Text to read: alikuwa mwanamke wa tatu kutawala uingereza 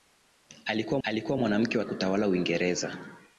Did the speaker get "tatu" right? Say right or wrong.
wrong